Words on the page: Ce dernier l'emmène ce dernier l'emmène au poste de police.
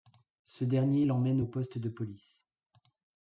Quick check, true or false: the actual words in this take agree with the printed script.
false